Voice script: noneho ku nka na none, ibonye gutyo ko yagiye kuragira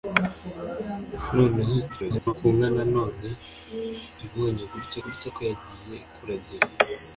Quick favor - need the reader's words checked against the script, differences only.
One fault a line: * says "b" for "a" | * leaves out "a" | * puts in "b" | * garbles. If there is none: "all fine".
* garbles
* puts in "gutyo"